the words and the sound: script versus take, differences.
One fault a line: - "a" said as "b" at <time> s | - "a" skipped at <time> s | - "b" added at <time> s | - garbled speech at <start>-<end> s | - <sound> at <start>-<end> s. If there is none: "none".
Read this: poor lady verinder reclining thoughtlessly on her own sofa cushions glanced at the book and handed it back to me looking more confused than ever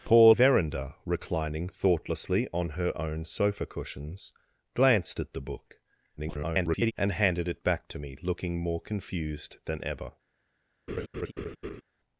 - "lady" skipped at 0.3 s
- garbled speech at 6.2-6.9 s
- laugh at 10.9-11.8 s